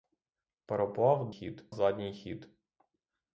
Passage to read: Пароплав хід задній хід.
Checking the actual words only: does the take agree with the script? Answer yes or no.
yes